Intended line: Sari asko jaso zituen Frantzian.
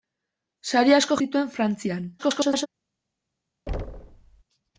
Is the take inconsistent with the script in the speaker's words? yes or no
yes